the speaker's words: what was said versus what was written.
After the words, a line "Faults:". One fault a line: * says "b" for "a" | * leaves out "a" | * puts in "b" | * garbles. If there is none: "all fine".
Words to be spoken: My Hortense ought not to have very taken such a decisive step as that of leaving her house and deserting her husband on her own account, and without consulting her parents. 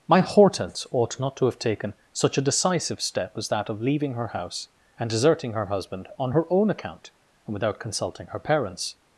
My Hortense ought not to have taken such a decisive step as that of leaving her house and deserting her husband on her own account, and without consulting her parents.
Faults:
* leaves out "very"